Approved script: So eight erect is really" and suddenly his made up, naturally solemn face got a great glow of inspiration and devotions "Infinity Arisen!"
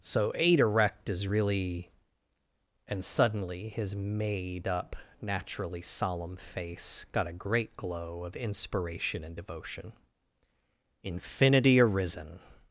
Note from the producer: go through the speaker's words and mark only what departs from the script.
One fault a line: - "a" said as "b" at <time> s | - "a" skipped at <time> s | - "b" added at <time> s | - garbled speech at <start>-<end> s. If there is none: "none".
- "devotions" said as "devotion" at 9.3 s